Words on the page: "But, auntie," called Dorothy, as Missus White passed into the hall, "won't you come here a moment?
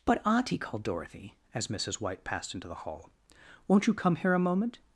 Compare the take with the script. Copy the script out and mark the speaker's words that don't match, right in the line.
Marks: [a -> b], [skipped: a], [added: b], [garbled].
"But, auntie," called Dorothy, as Missus White passed into the hall, "won't you come here a moment?